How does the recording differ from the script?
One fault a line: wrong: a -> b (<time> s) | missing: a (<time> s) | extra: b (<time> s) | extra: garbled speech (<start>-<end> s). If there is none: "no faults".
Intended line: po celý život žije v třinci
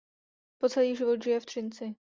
no faults